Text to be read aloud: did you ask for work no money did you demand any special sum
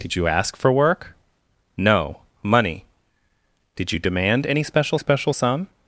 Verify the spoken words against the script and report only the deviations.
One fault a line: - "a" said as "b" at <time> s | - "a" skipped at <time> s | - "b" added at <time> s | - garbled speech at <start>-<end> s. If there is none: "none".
- "special" added at 5.0 s